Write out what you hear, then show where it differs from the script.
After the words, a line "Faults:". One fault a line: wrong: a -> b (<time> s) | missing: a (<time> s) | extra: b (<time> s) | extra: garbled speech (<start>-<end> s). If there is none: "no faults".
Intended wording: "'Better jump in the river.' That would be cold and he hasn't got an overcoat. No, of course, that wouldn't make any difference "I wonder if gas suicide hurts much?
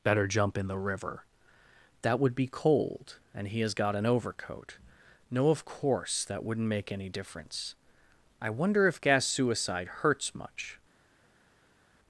"'Better jump in the river.' That would be cold and he has got an overcoat. No, of course, that wouldn't make any difference "I wonder if gas suicide hurts much?
Faults:
wrong: hasn't -> has (3.6 s)